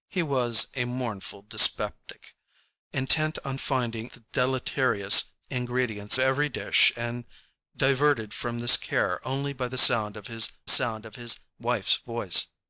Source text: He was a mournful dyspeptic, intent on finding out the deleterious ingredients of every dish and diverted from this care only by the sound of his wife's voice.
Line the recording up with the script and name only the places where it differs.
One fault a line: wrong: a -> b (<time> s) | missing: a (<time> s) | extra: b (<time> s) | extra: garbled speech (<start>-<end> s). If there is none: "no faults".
missing: out (4.1 s)
missing: of (6.2 s)
extra: sound of his (10.7 s)